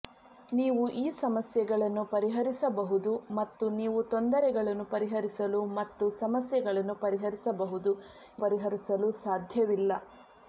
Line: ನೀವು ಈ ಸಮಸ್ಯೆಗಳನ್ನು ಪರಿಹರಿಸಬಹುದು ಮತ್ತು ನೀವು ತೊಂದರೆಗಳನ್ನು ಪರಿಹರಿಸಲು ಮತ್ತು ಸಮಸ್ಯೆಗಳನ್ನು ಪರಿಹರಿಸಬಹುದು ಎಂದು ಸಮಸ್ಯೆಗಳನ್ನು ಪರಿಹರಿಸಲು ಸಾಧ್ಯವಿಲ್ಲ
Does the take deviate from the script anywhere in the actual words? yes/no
yes